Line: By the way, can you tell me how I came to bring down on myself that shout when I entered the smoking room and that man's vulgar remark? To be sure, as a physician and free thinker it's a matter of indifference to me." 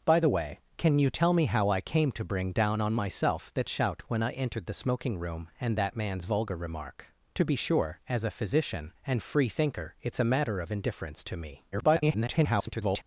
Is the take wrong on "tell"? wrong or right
right